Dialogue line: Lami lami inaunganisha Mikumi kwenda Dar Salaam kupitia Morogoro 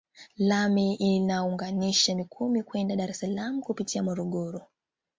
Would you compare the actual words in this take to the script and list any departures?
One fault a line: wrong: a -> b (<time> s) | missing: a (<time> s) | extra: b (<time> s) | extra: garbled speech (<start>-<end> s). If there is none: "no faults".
missing: lami (0.9 s)
extra: es (3.1 s)